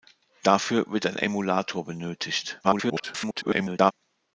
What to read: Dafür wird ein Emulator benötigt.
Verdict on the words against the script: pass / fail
fail